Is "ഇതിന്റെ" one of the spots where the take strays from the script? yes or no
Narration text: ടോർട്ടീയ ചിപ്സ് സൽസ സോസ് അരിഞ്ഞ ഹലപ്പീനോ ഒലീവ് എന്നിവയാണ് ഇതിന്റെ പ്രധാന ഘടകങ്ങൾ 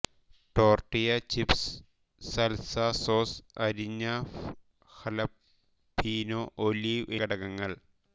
yes